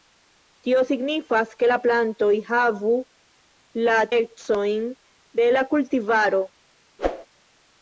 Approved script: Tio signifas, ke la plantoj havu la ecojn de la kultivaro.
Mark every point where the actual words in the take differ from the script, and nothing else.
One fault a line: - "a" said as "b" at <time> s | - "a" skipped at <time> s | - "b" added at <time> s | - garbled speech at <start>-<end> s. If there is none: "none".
none